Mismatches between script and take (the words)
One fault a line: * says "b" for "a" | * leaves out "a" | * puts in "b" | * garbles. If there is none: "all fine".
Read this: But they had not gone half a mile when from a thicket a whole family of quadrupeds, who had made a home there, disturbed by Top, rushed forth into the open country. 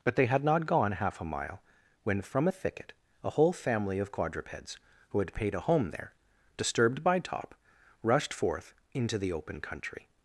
* says "paid" for "made"